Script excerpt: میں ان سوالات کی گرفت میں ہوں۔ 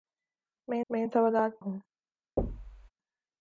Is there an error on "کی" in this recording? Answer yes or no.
yes